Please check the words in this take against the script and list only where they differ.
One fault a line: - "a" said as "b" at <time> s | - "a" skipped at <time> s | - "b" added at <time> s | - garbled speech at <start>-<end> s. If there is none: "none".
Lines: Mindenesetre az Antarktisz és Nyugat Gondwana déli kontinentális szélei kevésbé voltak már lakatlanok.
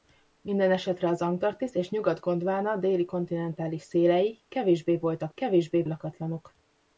- "már" said as "kevésbé" at 5.3 s